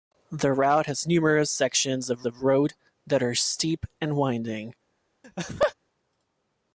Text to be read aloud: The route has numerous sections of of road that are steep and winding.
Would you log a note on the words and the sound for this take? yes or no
yes